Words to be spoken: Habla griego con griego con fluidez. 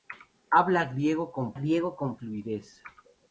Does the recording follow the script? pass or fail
pass